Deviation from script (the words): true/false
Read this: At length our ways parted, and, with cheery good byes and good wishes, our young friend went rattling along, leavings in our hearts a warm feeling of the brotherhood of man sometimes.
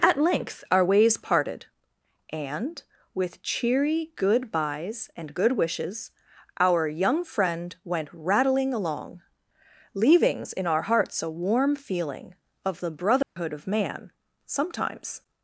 false